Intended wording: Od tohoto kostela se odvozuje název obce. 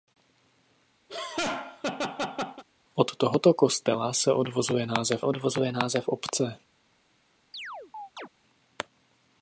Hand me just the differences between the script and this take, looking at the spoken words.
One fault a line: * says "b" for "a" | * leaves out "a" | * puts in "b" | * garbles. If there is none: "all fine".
* puts in "odvozuje název"